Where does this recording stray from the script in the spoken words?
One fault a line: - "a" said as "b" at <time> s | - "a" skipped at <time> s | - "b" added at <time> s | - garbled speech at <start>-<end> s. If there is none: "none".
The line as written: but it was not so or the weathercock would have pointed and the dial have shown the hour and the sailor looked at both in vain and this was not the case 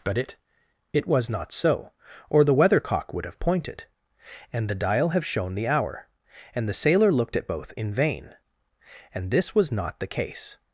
- "it" added at 0.9 s